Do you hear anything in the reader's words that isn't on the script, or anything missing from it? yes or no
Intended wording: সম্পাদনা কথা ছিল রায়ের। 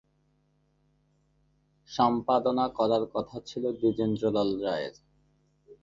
yes